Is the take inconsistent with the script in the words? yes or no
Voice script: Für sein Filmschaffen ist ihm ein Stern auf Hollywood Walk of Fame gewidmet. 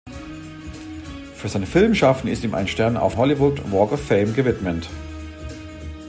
no